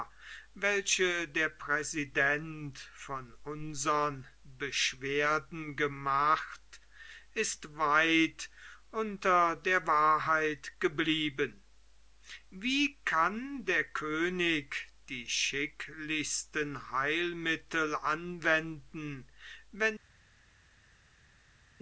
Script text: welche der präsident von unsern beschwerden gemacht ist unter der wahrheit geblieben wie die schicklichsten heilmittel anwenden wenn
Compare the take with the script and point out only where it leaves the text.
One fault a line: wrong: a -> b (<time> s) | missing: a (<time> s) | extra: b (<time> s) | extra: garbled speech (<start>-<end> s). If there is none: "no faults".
extra: weit (7.8 s)
extra: kann der könig (13.1 s)